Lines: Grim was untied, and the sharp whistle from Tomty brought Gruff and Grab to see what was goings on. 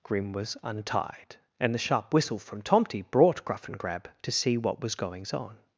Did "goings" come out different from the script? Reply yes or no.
no